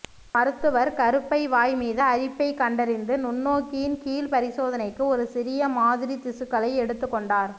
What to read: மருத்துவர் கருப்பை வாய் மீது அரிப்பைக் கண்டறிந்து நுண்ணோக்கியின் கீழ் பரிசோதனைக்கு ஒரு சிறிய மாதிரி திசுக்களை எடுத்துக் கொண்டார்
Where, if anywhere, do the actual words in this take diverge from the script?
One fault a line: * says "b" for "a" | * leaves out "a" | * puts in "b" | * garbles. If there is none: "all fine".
all fine